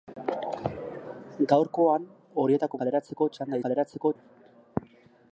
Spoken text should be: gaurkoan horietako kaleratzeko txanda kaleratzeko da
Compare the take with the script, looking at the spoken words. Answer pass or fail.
pass